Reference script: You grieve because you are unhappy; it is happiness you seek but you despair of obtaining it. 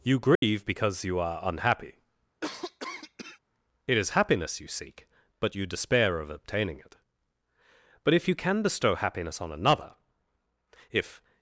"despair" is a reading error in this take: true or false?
false